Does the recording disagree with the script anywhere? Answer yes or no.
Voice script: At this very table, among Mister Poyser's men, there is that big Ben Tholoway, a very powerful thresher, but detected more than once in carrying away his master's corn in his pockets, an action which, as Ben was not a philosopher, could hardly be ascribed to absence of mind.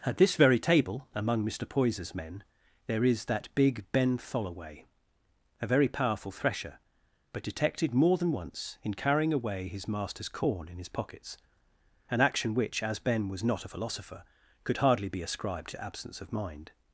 no